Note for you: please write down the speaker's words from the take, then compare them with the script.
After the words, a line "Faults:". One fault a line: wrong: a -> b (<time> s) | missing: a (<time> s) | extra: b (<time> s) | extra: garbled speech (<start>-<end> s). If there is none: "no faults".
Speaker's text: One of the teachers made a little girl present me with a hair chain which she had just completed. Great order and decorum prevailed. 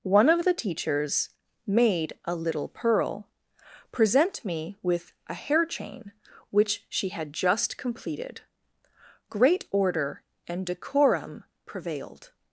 One of the teachers made a little pearl present me with a hair chain which she had just completed. Great order and decorum prevailed.
Faults:
wrong: girl -> pearl (2.7 s)